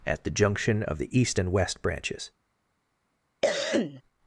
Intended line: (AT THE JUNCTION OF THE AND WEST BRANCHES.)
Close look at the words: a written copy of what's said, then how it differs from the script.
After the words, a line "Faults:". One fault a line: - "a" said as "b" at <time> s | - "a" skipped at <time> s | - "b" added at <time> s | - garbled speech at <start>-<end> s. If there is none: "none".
(AT THE JUNCTION OF THE EAST AND WEST BRANCHES.)
Faults:
- "EAST" added at 1.2 s